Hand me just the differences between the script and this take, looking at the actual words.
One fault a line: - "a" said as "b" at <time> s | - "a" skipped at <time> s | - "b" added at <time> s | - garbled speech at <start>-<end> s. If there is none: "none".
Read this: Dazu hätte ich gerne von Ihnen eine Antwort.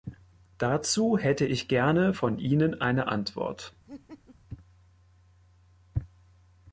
none